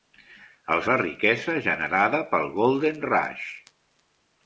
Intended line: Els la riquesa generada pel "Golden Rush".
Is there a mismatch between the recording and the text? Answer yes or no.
no